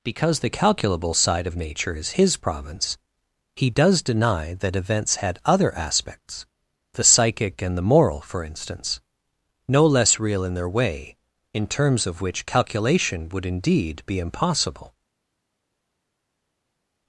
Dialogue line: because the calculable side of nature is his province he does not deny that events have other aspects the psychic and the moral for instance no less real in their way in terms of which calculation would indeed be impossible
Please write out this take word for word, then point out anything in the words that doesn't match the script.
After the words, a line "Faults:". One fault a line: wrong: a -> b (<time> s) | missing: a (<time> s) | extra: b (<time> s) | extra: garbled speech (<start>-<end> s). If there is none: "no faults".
because the calculable side of nature is his province he does deny that events had other aspects the psychic and the moral for instance no less real in their way in terms of which calculation would indeed be impossible
Faults:
missing: not (4.0 s)
wrong: have -> had (5.2 s)